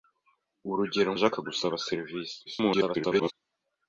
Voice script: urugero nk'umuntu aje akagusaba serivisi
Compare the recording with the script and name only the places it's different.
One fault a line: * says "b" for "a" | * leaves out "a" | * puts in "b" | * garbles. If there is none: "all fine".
* leaves out "nk'umuntu"
* garbles